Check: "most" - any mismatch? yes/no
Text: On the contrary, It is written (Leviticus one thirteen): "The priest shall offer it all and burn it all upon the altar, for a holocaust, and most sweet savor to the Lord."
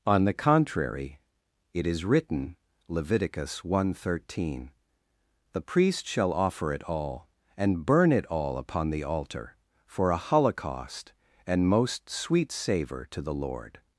no